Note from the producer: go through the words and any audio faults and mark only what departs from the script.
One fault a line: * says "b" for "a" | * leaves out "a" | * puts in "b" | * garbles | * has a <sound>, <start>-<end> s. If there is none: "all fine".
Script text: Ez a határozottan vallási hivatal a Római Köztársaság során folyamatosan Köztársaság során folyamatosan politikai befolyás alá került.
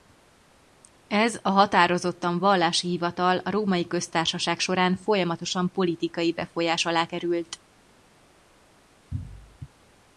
* leaves out "Köztársaság során folyamatosan"